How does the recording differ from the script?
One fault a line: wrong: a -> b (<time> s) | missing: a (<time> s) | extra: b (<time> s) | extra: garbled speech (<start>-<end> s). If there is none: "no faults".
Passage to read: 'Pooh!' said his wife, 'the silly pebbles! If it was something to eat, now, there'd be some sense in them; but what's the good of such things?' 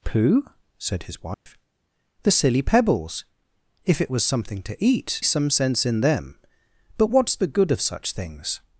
missing: now there'd be (5.2 s)